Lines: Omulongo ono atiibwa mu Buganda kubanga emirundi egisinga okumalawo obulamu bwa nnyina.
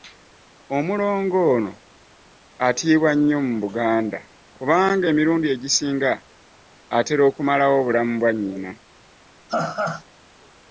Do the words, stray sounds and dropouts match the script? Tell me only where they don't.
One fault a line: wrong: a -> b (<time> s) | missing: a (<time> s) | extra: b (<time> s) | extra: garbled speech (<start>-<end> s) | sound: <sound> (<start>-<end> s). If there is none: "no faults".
extra: nnyo (3.2 s)
extra: atera (7.0 s)
sound: laugh (9.5-10.0 s)